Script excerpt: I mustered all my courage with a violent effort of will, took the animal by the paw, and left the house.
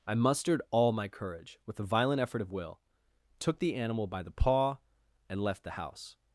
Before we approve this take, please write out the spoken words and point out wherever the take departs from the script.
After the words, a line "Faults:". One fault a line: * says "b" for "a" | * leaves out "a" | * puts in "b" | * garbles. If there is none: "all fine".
I mustered all my courage with a violent effort of will, took the animal by the paw, and left the house.
Faults:
all fine